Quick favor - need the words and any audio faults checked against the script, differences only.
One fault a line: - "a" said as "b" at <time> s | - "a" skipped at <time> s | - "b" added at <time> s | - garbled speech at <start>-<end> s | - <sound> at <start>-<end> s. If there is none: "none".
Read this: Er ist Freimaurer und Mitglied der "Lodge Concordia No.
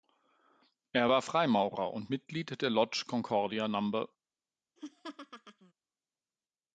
- "ist" said as "war" at 1.1 s
- laugh at 4.8-5.7 s